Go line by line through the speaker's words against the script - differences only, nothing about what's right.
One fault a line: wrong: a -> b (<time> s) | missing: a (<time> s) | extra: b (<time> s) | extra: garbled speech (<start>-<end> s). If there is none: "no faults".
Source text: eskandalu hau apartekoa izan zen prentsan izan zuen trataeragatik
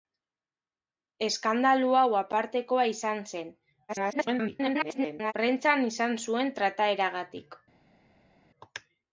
extra: garbled speech (3.9-5.3 s)